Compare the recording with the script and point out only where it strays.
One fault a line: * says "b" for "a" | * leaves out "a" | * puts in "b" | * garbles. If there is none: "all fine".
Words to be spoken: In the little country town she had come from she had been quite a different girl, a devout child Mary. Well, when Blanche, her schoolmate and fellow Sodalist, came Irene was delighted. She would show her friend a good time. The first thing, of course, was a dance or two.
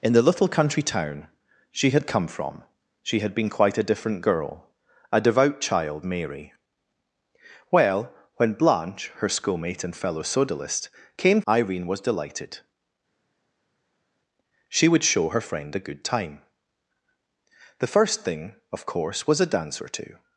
all fine